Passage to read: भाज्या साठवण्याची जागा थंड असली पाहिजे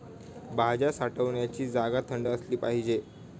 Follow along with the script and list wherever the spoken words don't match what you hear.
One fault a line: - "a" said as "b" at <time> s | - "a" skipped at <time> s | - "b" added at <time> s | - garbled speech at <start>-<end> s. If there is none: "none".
none